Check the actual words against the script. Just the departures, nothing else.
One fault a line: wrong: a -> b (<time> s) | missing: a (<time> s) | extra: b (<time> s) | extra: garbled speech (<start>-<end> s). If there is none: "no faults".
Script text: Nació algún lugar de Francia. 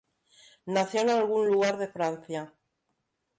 extra: en (1.0 s)